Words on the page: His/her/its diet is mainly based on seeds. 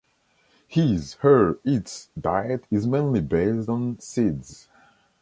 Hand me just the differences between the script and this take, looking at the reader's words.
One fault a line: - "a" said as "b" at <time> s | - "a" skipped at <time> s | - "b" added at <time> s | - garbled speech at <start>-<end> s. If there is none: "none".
none